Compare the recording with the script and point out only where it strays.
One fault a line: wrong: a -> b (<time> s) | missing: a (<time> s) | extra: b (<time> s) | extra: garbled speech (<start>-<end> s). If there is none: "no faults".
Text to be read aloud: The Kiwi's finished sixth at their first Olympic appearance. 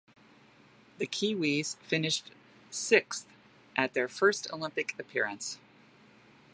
no faults